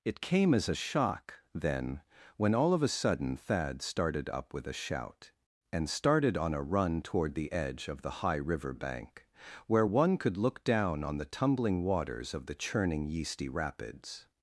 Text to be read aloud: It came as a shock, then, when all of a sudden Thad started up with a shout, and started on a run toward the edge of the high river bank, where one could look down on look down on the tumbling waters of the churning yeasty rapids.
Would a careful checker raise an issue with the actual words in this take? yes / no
yes